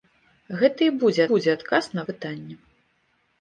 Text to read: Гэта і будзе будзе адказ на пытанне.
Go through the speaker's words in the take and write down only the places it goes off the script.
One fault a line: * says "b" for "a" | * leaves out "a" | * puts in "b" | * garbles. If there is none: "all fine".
all fine